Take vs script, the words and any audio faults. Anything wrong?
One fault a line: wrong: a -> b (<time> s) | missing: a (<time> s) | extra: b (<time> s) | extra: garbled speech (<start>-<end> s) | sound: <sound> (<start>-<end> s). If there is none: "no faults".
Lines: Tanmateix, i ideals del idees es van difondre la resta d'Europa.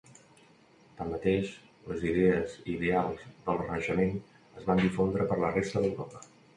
extra: les idees (1.9 s)
wrong: idees -> renaixement (3.6 s)
extra: per (5.3 s)